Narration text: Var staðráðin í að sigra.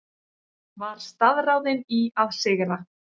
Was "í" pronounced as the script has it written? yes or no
yes